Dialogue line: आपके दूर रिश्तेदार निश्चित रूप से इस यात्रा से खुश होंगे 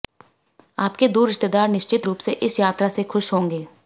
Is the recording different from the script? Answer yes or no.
no